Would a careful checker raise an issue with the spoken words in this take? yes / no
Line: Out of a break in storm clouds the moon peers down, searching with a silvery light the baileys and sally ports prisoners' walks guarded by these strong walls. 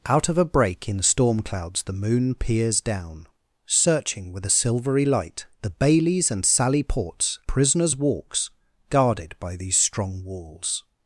no